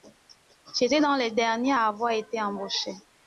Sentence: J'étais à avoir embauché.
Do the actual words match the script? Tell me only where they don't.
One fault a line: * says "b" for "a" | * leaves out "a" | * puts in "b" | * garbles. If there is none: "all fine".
* puts in "dans les derniers"
* puts in "été"